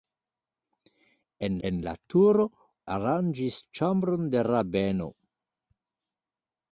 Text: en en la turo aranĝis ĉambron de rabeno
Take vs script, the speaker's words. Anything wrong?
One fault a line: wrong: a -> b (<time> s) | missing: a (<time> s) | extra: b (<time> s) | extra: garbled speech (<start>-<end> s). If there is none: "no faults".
no faults